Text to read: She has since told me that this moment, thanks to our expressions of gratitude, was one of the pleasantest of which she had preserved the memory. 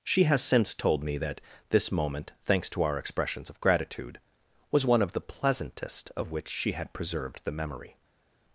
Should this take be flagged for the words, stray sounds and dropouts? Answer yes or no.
no